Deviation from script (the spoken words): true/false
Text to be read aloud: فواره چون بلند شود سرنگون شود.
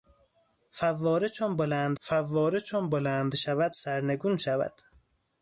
true